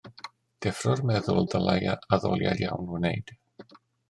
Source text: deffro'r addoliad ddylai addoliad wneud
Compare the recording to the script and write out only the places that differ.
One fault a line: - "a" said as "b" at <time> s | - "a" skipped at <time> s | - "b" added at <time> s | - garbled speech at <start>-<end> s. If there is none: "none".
- "addoliad" said as "meddwl" at 1.1 s
- "iawn" added at 2.7 s